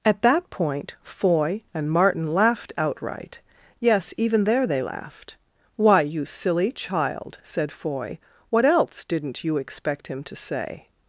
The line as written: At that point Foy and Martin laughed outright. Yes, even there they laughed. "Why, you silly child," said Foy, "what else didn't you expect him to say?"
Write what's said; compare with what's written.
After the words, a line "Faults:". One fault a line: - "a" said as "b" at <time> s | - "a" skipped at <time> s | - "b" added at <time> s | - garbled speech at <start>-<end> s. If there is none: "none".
At that point Foy and Martin laughed outright. Yes, even there they laughed. "Why, you silly child," said Foy, "what else didn't you expect him to say?"
Faults:
none